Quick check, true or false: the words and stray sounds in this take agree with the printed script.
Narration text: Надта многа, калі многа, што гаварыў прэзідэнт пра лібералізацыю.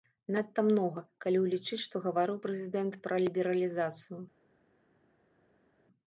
false